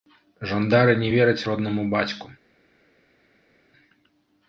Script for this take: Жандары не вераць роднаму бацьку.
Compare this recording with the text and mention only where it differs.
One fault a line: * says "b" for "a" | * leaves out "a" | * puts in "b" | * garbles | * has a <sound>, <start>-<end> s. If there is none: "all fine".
all fine